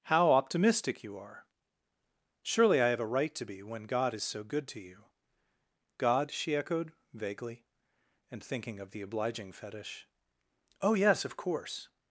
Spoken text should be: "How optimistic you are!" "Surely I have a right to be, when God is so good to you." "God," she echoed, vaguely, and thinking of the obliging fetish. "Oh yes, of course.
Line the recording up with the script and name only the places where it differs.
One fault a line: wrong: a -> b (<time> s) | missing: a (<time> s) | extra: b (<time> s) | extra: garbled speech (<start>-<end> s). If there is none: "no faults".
no faults